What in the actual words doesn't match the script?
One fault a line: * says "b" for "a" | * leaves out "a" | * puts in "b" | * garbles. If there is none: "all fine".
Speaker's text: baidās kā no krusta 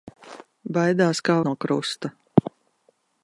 all fine